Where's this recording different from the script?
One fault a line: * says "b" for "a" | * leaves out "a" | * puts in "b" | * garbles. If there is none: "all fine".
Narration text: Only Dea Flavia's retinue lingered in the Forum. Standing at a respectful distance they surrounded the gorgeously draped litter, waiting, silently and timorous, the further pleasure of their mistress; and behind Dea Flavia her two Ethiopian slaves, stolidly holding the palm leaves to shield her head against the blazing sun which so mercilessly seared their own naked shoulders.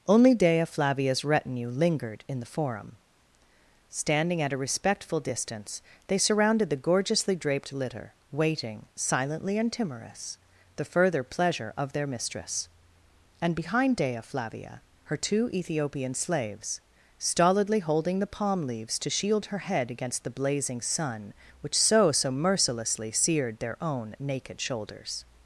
* puts in "so"